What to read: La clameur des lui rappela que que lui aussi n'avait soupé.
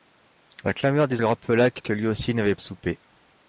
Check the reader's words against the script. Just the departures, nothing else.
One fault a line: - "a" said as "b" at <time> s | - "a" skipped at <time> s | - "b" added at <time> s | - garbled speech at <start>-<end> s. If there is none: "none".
none